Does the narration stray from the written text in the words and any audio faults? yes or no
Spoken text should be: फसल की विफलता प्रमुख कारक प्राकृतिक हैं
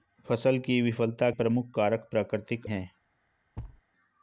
yes